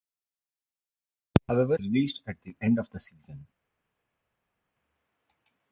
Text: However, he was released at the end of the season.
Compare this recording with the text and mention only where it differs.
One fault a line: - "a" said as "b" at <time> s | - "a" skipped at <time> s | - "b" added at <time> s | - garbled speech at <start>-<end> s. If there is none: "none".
- "he was" skipped at 1.8 s